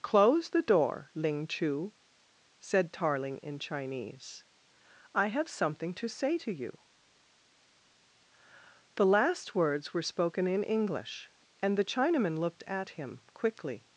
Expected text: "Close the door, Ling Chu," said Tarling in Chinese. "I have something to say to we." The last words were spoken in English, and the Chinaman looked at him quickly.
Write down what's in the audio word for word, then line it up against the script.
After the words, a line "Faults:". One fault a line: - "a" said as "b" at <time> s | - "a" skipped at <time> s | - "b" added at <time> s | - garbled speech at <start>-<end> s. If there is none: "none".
"Close the door, Ling Chu," said Tarling in Chinese. "I have something to say to you." The last words were spoken in English, and the Chinaman looked at him quickly.
Faults:
- "we" said as "you" at 6.5 s